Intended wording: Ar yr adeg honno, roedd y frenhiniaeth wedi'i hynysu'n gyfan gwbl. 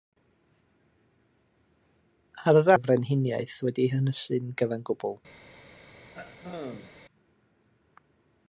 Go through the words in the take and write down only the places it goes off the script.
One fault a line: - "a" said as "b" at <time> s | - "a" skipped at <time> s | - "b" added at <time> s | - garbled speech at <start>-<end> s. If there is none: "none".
- "adeg honno roedd" skipped at 2.7 s